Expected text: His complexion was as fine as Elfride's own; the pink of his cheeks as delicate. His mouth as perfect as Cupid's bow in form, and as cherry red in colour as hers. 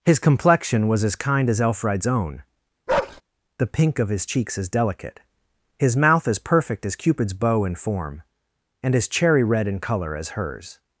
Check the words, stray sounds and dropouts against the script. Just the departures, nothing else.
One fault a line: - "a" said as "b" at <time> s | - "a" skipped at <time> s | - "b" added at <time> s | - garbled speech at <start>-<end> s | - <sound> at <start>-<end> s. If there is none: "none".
- "fine" said as "kind" at 1.1 s
- bark at 2.9-3.2 s